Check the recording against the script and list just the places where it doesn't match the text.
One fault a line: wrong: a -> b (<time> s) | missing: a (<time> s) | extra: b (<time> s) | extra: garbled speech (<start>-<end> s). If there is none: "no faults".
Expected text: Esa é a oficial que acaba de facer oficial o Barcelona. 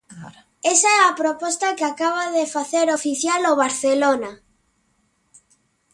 wrong: oficial -> proposta (1.2 s)